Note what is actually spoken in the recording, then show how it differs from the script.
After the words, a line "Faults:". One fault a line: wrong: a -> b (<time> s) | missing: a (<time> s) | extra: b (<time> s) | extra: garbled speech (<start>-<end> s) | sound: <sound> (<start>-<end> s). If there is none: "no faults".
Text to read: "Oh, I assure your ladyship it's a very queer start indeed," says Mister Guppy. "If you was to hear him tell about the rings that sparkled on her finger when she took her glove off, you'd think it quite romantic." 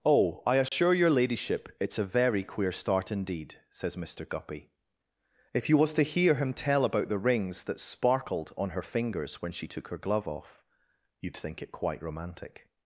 "Oh, I assure your ladyship it's a very queer start indeed," says Mister Guppy. "If you was to hear him tell about the rings that sparkled on her fingers when she took her glove off, you'd think it quite romantic."
Faults:
sound: dropout (0.7-0.7 s)
wrong: finger -> fingers (8.8 s)